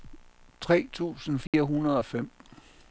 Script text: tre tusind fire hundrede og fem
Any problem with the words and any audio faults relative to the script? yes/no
yes